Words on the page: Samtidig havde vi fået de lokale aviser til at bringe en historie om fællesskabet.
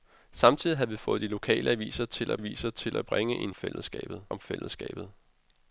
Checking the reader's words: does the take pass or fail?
fail